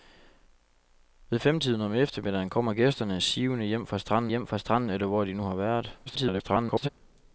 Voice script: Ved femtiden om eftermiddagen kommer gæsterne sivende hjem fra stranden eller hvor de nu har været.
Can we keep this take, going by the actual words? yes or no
no